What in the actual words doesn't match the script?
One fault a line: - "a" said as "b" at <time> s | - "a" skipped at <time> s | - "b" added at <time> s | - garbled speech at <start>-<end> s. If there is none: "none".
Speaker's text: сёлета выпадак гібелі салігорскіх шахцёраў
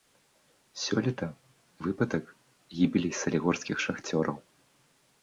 none